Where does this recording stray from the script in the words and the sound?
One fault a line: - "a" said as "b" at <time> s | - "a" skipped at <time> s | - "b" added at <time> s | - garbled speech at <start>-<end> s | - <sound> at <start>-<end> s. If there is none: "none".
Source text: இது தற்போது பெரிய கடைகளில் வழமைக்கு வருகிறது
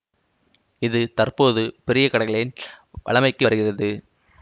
none